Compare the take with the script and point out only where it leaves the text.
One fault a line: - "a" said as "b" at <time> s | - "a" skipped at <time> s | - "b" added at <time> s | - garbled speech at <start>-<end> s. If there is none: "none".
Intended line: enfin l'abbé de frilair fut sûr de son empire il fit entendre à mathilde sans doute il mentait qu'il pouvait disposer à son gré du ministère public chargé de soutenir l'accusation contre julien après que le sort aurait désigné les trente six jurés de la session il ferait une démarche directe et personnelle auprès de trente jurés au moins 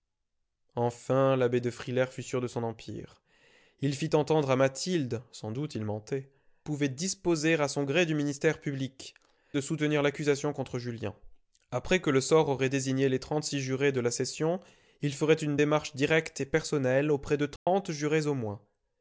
- "qu'il" skipped at 6.3 s
- "chargé" skipped at 9.1 s